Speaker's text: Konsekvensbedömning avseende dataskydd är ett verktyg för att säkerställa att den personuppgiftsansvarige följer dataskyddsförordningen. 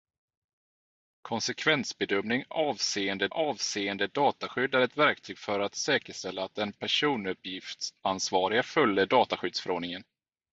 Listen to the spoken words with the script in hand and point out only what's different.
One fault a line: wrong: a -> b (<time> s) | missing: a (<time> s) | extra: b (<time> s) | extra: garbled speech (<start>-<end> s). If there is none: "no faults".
extra: avseende (3.3 s)